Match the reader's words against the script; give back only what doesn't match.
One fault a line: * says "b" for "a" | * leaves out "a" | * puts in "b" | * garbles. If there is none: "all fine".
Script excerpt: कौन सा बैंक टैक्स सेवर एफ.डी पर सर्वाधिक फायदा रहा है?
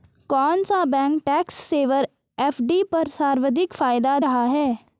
all fine